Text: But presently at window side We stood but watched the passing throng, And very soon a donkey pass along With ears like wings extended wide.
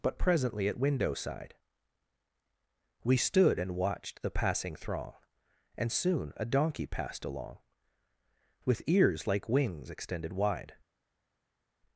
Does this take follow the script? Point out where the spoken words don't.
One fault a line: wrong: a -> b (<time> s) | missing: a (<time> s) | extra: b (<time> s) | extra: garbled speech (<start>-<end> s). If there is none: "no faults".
wrong: but -> and (3.6 s)
missing: very (5.9 s)
wrong: pass -> passed (6.9 s)